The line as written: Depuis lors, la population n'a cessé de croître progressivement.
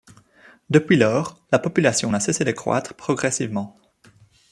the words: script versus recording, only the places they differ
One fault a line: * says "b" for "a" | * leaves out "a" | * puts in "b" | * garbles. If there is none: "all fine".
all fine